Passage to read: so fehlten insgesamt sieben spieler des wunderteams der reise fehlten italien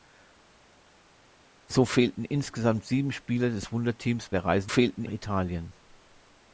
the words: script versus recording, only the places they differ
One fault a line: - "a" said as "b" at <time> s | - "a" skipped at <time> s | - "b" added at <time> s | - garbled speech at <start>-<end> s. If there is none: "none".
none